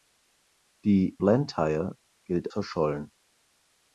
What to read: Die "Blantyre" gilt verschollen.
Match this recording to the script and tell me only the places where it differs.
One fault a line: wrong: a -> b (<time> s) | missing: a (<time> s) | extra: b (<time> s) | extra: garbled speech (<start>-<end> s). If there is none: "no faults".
no faults